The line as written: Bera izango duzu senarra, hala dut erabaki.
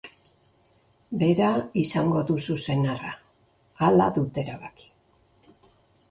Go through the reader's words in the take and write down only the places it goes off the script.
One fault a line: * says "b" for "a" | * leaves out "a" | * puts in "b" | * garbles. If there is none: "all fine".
all fine